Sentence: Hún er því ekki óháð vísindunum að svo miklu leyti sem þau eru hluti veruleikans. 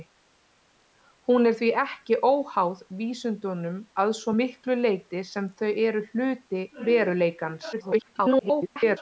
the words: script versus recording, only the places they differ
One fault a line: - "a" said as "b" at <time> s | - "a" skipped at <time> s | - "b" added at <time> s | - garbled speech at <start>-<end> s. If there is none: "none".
- garbled speech at 7.7-9.0 s